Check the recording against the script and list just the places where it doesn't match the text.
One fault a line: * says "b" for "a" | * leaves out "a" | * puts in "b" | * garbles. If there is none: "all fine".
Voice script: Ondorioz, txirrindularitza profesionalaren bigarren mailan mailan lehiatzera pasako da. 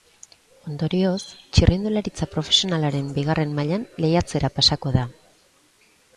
* leaves out "mailan"